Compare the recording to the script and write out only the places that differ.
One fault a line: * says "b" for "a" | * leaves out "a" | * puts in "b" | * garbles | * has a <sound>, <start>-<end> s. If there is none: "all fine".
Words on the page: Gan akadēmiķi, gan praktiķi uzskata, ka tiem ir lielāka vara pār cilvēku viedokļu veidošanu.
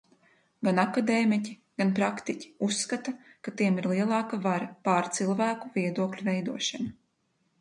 all fine